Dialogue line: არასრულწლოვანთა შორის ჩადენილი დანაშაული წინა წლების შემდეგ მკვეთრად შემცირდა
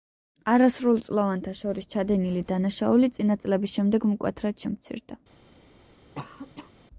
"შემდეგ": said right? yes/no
yes